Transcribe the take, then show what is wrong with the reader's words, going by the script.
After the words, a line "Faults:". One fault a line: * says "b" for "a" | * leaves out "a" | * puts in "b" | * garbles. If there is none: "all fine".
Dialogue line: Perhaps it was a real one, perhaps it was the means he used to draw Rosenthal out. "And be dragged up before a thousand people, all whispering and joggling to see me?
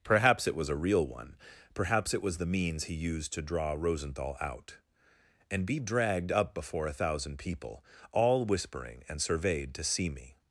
Perhaps it was a real one, perhaps it was the means he used to draw Rosenthal out. "And be dragged up before a thousand people, all whispering and surveyed to see me?
Faults:
* says "surveyed" for "joggling"